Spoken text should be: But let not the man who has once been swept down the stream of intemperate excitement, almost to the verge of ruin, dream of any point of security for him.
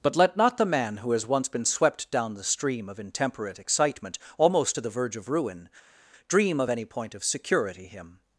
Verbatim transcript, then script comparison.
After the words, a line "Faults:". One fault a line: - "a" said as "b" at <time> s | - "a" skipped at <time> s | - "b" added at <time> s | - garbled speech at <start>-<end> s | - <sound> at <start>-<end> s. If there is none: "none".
But let not the man who has once been swept down the stream of intemperate excitement, almost to the verge of ruin, dream of any point of security him.
Faults:
- "for" skipped at 7.9 s